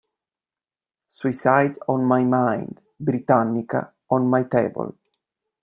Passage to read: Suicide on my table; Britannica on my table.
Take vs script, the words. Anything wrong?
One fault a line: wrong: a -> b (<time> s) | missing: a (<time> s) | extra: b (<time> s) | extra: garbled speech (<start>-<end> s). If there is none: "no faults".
wrong: table -> mind (2.2 s)